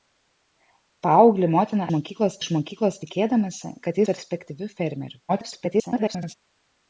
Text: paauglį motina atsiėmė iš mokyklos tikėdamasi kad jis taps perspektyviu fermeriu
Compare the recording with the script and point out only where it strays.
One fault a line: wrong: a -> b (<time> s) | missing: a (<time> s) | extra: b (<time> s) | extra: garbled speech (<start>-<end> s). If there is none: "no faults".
wrong: atsiėmė -> mokyklos (2.0 s)
missing: jis taps (4.0 s)
extra: garbled speech (5.3-6.3 s)